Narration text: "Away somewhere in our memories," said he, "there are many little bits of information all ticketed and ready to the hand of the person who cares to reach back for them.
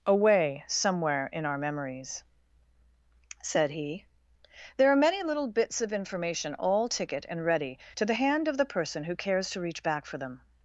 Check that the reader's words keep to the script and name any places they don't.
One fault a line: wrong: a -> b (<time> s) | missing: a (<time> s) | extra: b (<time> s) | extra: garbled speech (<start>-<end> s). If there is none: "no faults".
wrong: ticketed -> ticket (6.9 s)